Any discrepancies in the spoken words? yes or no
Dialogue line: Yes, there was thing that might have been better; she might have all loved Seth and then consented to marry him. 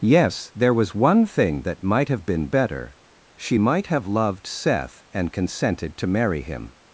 yes